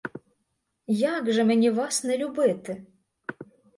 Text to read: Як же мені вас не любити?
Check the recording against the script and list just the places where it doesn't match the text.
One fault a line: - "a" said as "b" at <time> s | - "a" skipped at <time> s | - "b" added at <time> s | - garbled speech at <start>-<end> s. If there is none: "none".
none